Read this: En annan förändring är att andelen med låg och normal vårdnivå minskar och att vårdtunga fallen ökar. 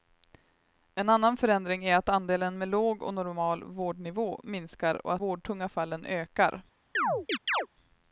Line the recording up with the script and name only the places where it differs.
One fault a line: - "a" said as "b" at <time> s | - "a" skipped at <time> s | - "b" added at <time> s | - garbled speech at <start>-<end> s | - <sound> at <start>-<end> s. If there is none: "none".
- chirp at 6.9-7.7 s